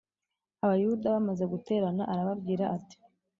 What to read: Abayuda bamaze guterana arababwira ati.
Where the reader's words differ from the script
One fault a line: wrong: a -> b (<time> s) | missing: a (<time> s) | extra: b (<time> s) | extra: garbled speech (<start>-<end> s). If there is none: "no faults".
no faults